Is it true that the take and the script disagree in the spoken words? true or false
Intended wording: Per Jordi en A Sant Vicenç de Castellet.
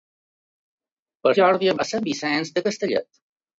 false